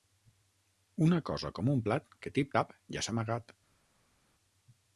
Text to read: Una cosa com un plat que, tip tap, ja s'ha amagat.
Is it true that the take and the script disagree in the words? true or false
false